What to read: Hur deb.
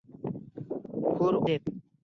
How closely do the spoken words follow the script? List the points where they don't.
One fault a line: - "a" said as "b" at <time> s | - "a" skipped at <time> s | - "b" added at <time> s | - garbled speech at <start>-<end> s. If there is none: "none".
none